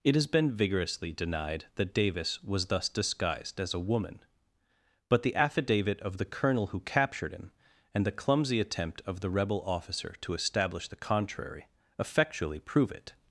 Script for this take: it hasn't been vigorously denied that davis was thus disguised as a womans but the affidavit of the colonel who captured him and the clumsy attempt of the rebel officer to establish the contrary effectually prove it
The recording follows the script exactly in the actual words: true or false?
false